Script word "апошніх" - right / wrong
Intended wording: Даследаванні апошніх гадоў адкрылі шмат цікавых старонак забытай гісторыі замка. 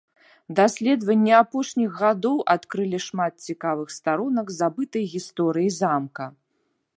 right